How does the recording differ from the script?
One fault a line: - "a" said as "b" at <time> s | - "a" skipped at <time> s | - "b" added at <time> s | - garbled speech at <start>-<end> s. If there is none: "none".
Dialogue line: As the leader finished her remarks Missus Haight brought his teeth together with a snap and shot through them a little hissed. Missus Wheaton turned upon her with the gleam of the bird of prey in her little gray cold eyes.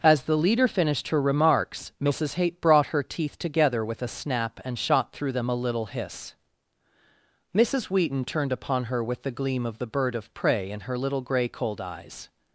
- "his" said as "her" at 2.9 s
- "hissed" said as "hiss" at 5.8 s